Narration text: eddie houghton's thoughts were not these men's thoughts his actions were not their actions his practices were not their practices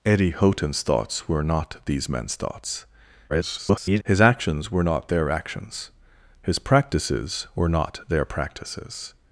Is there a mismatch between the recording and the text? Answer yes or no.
yes